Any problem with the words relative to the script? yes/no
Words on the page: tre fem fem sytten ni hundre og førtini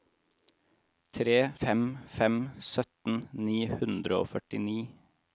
no